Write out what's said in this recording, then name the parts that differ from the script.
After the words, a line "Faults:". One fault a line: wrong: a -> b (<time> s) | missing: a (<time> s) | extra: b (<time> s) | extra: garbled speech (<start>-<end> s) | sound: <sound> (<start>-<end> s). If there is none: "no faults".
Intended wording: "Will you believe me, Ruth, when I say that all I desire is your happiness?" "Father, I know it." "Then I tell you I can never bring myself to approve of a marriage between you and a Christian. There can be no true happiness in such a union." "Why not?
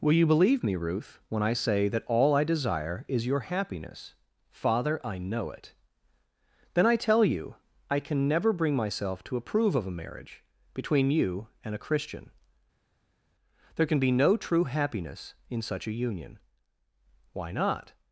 "Will you believe me, Ruth, when I say that all I desire is your happiness?" "Father, I know it." "Then I tell you I can never bring myself to approve of a marriage between you and a Christian. There can be no true happiness in such a union." "Why not?
Faults:
no faults